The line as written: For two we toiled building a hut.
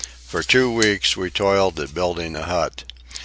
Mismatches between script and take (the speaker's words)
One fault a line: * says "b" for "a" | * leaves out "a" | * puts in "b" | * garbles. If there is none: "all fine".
* puts in "weeks"
* puts in "at"